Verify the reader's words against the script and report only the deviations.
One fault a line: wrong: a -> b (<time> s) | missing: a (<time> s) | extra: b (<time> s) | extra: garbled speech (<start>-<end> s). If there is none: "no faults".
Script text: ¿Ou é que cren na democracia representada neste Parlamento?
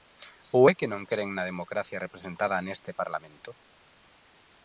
extra: non (0.9 s)